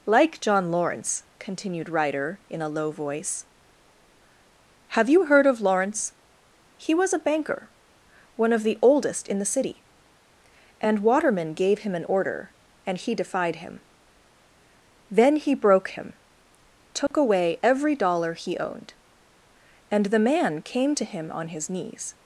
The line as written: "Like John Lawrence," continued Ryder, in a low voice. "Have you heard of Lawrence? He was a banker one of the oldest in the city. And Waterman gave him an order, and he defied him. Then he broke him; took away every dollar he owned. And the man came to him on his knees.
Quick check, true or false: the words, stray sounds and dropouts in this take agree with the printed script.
false